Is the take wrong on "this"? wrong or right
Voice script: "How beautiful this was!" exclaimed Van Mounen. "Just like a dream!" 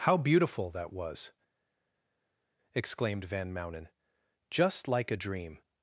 wrong